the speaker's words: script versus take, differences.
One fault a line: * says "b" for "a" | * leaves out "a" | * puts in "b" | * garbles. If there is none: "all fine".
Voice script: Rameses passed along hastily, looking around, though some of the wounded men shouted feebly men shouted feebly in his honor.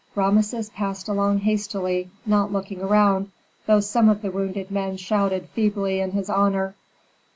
* puts in "not"
* leaves out "men shouted feebly"